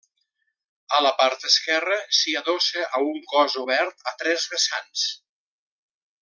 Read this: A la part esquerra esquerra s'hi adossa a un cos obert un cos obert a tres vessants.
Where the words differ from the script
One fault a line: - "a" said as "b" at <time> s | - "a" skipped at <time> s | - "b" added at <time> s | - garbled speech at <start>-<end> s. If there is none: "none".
- "esquerra" skipped at 2.0 s
- "un cos obert" skipped at 4.1 s